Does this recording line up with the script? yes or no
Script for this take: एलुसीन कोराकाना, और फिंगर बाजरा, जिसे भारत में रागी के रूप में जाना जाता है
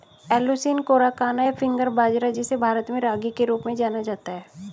no